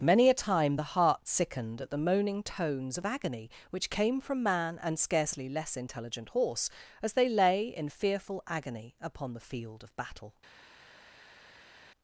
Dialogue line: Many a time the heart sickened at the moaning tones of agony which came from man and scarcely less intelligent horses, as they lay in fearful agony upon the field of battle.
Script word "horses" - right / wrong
wrong